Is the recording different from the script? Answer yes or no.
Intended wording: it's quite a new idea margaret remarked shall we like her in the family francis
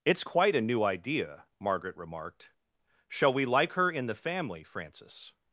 no